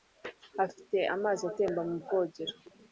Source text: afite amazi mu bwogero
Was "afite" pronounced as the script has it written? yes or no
yes